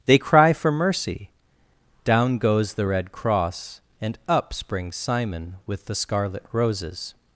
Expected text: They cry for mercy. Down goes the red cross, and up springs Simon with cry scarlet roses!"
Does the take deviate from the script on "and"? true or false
false